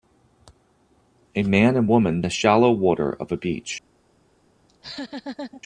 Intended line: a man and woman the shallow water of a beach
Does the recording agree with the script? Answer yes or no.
yes